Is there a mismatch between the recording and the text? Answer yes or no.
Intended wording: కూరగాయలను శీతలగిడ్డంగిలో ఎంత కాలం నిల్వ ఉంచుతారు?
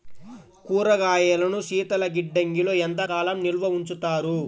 no